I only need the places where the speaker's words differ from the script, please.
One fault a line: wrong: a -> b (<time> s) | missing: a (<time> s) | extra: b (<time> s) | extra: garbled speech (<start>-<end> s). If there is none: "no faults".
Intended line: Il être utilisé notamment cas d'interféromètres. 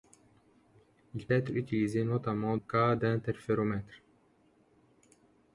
no faults